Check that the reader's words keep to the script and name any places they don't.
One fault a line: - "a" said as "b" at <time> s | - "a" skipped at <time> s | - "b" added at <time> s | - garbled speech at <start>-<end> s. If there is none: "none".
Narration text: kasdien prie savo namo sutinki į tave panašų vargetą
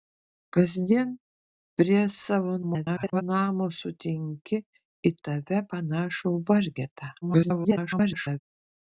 - garbled speech at 2.6-3.2 s
- garbled speech at 7.2-8.4 s